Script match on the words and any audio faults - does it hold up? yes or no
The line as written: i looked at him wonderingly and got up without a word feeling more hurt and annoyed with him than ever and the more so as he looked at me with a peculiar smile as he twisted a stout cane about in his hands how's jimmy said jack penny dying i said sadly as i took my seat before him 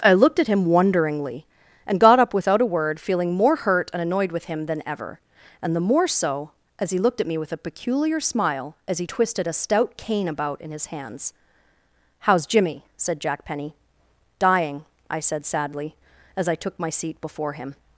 yes